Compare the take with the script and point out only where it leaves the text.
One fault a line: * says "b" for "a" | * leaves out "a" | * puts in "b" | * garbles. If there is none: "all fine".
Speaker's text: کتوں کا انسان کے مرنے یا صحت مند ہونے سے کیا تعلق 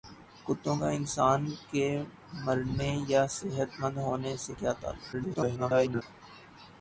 * garbles